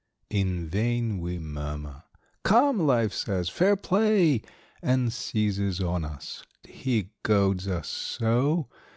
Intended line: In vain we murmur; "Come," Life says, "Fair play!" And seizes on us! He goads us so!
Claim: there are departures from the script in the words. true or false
false